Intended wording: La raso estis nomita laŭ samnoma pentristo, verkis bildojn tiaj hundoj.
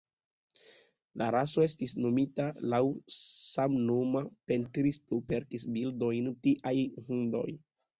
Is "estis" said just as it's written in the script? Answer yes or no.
yes